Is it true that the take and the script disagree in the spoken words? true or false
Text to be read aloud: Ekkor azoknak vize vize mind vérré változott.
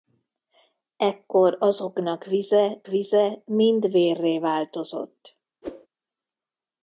false